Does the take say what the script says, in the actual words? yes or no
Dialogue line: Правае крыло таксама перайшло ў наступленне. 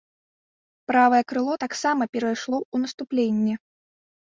yes